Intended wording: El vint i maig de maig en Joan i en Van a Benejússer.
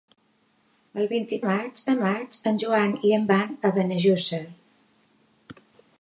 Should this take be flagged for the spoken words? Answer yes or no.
no